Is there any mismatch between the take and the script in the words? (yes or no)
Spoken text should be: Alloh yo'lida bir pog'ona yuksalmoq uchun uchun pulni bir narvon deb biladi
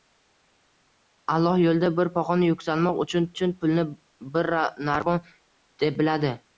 no